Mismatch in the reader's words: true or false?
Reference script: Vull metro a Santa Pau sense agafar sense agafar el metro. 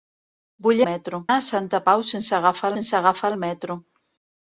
false